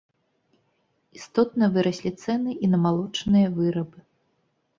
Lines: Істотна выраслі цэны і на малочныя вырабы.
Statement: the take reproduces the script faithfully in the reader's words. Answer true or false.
true